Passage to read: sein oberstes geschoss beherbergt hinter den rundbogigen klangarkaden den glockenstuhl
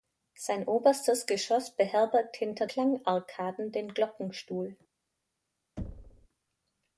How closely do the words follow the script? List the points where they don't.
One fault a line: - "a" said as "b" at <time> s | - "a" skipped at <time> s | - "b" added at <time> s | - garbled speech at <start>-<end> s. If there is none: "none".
- "den rundbogigen" skipped at 2.6 s